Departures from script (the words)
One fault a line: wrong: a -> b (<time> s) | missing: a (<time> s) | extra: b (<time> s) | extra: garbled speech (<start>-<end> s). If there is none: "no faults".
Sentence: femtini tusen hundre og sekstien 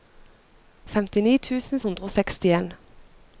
no faults